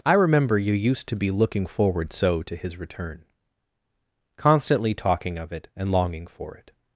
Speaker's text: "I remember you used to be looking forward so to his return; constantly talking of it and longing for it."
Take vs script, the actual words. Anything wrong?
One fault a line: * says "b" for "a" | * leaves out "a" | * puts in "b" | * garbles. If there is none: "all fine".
all fine